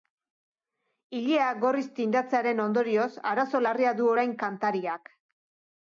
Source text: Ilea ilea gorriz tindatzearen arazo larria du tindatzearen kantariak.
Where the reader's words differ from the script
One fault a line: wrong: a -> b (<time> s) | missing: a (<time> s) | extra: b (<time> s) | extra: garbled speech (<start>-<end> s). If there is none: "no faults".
missing: ilea (1.5 s)
extra: ondorioz (2.6 s)
wrong: tindatzearen -> orain (4.1 s)